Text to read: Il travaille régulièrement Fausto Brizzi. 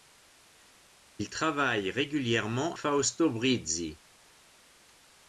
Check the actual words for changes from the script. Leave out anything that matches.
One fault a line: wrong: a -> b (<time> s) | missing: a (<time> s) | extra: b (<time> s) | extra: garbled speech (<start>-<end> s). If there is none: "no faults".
no faults